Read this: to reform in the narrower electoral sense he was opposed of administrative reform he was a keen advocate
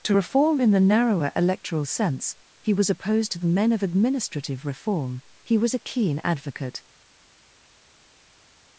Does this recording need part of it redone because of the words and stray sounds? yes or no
yes